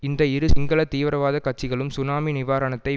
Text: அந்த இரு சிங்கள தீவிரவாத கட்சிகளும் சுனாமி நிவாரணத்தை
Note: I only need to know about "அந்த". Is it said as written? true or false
false